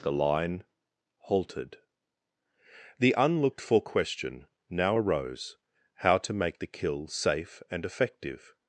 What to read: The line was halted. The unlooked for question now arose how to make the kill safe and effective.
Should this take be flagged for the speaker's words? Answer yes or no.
yes